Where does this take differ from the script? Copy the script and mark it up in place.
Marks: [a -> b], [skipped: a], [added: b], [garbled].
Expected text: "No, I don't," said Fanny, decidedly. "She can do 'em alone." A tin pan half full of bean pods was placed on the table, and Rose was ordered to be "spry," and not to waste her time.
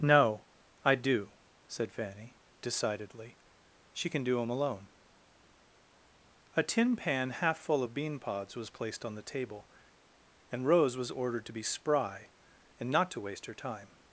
"No, I [don't," -> do] said Fanny, decidedly. "She can do 'em alone." A tin pan half full of bean pods was placed on the table, and Rose was ordered to be "spry," and not to waste her time.